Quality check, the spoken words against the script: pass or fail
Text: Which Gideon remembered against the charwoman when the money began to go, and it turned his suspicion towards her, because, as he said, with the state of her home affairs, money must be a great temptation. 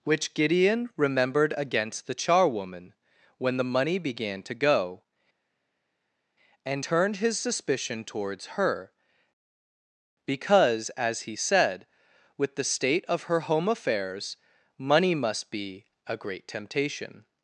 fail